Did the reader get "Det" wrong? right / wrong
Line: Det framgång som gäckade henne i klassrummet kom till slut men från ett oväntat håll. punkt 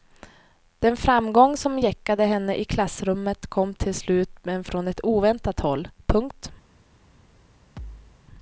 wrong